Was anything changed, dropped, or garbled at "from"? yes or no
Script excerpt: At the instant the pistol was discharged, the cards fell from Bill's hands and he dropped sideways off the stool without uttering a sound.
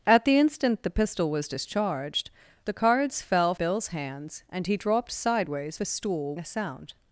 yes